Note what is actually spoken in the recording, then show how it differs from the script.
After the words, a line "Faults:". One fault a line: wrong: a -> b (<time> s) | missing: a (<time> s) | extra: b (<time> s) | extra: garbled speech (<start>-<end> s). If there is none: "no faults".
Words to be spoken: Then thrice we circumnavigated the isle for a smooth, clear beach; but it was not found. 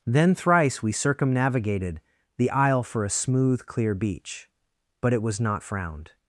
Then thrice we circumnavigated the isle for a smooth, clear beach; but it was not frowned.
Faults:
wrong: found -> frowned (5.6 s)